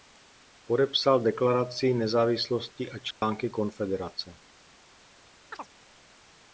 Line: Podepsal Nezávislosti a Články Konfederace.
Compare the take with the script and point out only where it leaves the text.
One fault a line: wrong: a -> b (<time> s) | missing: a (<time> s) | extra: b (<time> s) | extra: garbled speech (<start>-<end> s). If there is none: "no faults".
extra: Deklaraci (1.2 s)